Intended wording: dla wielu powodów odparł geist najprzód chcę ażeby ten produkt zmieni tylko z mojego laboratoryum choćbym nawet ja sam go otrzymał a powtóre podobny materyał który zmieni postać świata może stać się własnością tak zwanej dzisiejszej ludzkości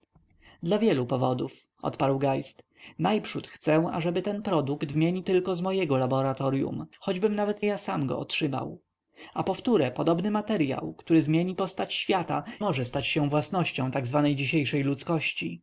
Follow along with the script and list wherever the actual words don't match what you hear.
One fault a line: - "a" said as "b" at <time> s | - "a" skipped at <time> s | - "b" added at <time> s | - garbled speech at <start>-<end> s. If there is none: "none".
none